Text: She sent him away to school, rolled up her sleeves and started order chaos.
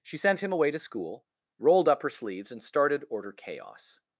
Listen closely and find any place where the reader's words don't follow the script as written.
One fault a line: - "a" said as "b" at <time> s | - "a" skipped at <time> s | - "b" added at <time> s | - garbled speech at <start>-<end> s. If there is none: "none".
none